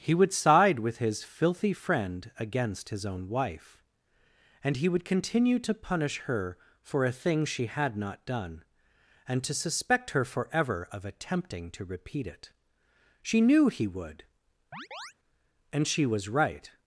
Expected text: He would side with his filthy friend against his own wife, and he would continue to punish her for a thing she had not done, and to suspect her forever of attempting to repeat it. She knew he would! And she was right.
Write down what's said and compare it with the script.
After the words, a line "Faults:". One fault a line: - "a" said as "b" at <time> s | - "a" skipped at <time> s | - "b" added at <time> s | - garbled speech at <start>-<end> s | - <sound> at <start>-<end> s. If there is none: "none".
He would side with his filthy friend against his own wife, and he would continue to punish her for a thing she had not done, and to suspect her forever of attempting to repeat it. She knew he would! And she was right.
Faults:
- chirp at 14.7-15.1 s